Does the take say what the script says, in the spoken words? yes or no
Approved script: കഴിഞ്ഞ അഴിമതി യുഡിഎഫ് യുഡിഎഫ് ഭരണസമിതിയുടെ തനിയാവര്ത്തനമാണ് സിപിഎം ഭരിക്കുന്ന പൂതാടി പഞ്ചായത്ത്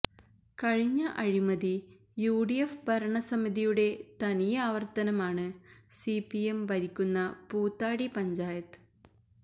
no